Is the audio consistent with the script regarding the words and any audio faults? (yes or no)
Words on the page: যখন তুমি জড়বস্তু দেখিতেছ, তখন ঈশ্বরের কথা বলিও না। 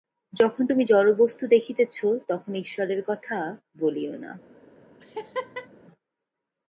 no